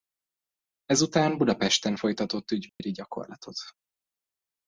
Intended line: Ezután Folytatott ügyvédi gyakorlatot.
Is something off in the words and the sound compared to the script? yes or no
yes